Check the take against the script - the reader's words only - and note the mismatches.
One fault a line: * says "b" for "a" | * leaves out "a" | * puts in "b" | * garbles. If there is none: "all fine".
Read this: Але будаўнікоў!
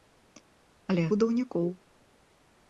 all fine